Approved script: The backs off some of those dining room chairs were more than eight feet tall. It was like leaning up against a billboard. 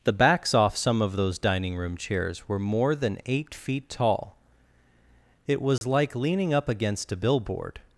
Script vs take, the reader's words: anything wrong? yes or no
no